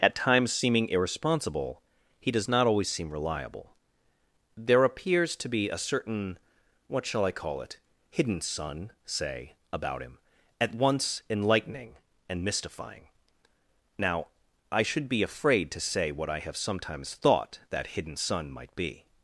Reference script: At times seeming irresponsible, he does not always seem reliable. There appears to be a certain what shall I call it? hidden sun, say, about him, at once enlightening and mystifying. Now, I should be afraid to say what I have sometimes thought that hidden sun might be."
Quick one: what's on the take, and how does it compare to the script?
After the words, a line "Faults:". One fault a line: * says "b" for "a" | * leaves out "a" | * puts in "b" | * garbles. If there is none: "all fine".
At times seeming irresponsible, he does not always seem reliable. There appears to be a certain what shall I call it? hidden sun, say, about him, at once enlightening and mystifying. Now, I should be afraid to say what I have sometimes thought that hidden sun might be."
Faults:
all fine